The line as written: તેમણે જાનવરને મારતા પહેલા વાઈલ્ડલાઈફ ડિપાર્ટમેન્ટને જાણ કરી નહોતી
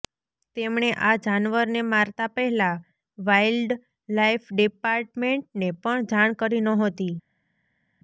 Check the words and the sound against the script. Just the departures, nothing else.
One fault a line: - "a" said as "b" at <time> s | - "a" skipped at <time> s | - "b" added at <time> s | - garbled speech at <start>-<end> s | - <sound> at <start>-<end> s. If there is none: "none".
- "આ" added at 1.0 s
- "પણ" added at 5.8 s